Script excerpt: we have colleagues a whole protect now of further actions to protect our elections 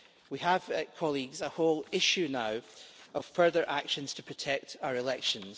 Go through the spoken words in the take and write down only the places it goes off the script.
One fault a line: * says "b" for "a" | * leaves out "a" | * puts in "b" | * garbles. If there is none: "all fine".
* says "issue" for "protect"